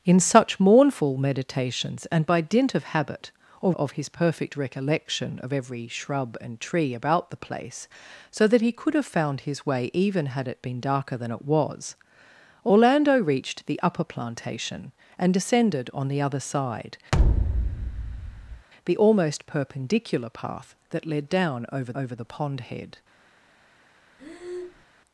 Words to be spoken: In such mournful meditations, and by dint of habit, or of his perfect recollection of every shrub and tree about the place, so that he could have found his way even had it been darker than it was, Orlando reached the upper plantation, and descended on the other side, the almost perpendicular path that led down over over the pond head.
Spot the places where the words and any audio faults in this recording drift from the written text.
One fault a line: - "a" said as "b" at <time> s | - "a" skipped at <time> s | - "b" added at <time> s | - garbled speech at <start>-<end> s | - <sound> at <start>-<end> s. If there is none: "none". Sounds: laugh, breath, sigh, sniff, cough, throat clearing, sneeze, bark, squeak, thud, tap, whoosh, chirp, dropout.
- thud at 17.1-18.7 s
- breath at 24.2-24.9 s